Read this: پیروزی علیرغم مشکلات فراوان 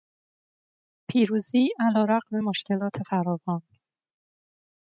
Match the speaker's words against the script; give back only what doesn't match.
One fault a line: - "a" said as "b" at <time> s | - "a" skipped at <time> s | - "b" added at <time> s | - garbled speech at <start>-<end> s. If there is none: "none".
none